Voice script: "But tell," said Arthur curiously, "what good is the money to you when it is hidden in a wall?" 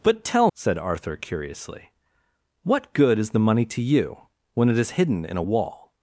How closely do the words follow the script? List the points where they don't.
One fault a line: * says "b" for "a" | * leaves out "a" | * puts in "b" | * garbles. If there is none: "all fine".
all fine